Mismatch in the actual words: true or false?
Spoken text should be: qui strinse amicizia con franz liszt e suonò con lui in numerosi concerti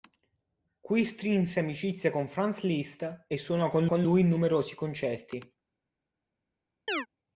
true